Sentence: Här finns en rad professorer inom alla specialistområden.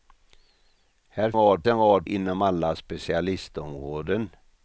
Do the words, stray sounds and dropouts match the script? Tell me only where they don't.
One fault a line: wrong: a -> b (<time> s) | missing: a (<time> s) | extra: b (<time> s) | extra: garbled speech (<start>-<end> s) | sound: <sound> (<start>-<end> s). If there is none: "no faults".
wrong: finns -> rad (1.4 s)
missing: professorer (2.1 s)